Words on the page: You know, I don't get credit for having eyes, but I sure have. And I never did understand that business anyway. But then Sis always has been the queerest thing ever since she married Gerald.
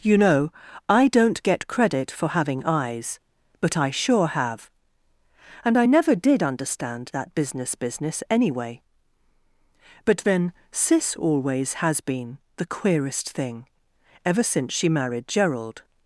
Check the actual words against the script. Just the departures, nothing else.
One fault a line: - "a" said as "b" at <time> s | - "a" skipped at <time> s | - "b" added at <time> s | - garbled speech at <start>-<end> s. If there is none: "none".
- "business" added at 7.7 s